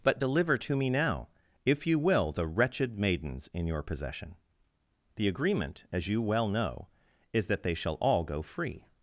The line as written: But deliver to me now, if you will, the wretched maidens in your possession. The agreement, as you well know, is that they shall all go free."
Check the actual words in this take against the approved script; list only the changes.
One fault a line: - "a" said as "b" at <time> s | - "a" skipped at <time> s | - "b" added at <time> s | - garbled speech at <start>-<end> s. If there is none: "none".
none